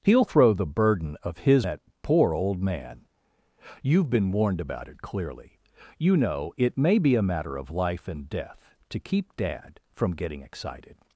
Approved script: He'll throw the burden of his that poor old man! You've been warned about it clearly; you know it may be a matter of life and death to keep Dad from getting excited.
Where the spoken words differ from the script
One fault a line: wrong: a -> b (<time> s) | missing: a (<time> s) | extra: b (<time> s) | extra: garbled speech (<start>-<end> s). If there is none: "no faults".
no faults